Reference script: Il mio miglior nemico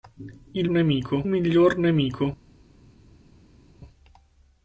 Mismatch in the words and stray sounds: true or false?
true